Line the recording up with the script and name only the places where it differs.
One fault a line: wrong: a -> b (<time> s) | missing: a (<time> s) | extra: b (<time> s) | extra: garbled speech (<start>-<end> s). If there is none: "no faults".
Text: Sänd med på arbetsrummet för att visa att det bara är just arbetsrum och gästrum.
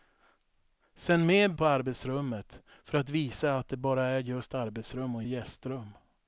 no faults